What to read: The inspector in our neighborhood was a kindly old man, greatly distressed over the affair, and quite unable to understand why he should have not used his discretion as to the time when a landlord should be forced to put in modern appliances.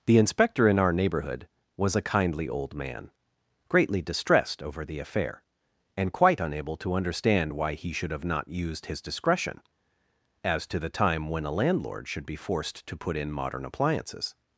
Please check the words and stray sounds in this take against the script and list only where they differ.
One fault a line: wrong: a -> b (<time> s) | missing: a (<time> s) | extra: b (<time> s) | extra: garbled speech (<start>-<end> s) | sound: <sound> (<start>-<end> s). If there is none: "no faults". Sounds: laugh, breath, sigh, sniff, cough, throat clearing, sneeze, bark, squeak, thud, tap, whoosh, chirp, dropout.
no faults